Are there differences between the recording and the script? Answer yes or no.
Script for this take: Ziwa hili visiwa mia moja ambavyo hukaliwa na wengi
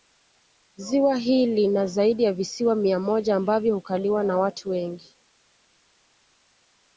yes